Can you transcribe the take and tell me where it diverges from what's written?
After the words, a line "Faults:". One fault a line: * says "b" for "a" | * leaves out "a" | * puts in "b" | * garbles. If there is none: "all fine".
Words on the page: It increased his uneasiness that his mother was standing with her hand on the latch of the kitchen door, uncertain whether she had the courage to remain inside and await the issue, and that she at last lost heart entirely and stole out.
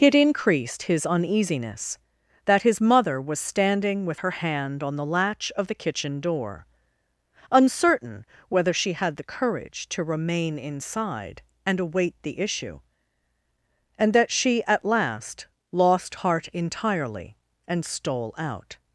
It increased his uneasiness that his mother was standing with her hand on the latch of the kitchen door, uncertain whether she had the courage to remain inside and await the issue, and that she at last lost heart entirely and stole out.
Faults:
all fine